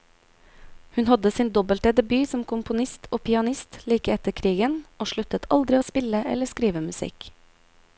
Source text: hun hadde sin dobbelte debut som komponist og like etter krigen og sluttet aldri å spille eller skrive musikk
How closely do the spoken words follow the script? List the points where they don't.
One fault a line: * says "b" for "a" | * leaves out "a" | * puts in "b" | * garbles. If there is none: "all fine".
* puts in "pianist"